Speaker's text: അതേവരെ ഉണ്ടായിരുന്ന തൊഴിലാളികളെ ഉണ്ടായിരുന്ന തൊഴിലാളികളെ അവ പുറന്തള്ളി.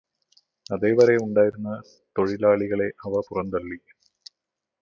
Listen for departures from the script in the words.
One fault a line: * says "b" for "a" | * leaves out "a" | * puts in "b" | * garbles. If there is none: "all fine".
* leaves out "ഉണ്ടായിരുന്ന തൊഴിലാളികളെ"